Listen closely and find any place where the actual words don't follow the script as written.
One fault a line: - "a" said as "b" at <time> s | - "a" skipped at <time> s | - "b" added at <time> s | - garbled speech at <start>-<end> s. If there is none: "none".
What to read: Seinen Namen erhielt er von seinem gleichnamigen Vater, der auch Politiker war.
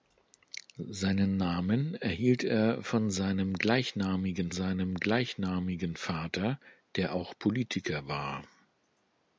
- "seinem gleichnamigen" added at 4.5 s